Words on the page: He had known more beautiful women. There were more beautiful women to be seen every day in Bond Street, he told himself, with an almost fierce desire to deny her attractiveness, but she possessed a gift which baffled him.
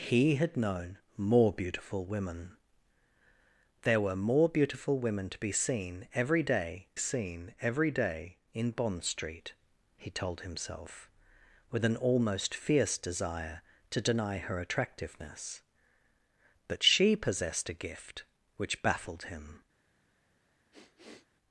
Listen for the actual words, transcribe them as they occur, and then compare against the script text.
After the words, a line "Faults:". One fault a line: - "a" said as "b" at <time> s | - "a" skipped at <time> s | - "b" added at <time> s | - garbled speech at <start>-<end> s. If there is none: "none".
He had known more beautiful women. There were more beautiful women to be seen every day seen every day in Bond Street, he told himself, with an almost fierce desire to deny her attractiveness, but she possessed a gift which baffled him.
Faults:
- "seen every day" added at 7.0 s